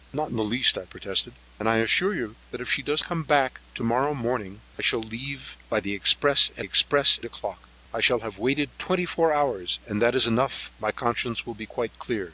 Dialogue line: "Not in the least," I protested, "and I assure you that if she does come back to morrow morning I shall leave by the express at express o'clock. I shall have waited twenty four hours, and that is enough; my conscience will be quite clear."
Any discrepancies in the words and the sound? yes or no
no